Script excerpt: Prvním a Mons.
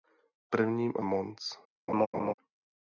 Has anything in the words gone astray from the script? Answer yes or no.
no